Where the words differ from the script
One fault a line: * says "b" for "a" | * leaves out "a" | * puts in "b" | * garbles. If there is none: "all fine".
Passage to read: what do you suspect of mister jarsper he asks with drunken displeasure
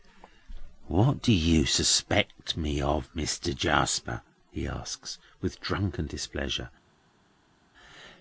* puts in "me"